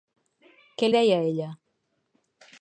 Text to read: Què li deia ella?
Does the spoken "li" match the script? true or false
false